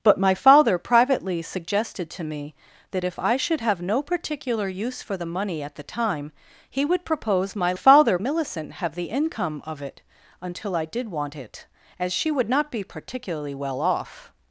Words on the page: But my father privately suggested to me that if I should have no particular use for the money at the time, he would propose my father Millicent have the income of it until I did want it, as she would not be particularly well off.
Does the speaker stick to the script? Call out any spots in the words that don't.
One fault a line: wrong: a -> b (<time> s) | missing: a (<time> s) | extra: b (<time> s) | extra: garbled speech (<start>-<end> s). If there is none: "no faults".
no faults